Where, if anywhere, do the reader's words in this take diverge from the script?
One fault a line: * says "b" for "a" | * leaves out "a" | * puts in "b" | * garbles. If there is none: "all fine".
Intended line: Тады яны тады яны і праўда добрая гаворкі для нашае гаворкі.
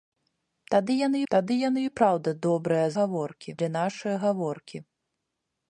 all fine